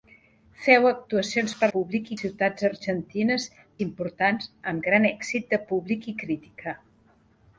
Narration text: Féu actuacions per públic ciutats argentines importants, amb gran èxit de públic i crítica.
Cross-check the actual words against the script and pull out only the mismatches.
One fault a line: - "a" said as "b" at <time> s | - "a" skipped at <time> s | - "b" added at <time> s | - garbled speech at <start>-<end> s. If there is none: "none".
none